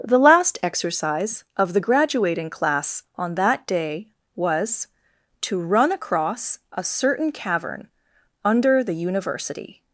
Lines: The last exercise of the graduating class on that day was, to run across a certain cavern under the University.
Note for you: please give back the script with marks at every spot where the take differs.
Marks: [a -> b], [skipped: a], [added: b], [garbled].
The last exercise of the graduating class on that day was, to run across a certain cavern under the University.